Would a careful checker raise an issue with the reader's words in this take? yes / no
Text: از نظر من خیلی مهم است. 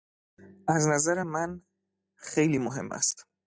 no